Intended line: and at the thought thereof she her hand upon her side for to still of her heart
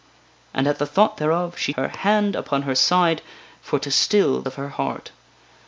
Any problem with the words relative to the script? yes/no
no